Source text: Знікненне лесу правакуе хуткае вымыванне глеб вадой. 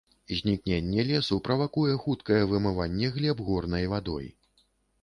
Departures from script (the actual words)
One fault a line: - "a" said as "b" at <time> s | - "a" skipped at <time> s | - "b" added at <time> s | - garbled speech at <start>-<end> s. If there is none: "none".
- "горнай" added at 3.5 s